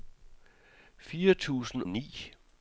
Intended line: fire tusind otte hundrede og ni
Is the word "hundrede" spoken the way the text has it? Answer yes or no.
no